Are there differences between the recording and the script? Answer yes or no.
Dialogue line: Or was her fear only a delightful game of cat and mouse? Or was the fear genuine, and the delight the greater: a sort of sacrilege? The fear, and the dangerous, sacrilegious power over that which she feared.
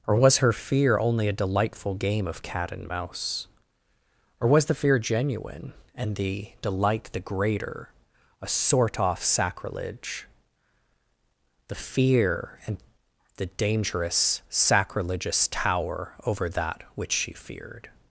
yes